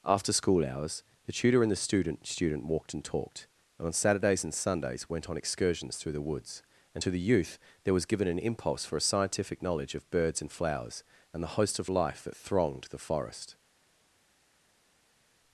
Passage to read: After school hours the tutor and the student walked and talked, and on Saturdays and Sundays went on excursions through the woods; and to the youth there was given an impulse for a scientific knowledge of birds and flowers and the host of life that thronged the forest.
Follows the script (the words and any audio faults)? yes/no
no